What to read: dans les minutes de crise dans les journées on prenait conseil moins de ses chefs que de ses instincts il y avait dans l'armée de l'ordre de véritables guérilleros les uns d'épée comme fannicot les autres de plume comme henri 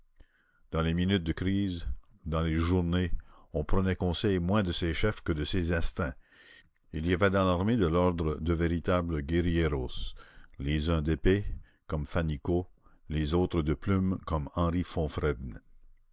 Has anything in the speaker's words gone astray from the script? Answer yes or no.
no